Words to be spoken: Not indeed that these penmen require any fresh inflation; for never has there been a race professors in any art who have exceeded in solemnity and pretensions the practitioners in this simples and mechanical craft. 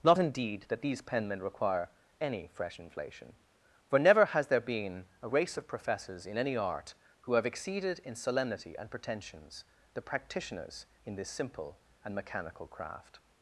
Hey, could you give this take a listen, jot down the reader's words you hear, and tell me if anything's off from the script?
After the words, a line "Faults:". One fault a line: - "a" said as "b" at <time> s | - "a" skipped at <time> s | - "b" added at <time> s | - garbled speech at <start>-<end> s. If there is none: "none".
Not indeed that these penmen require any fresh inflation; for never has there been a race of professors in any art who have exceeded in solemnity and pretensions the practitioners in this simple and mechanical craft.
Faults:
- "of" added at 5.6 s
- "simples" said as "simple" at 11.3 s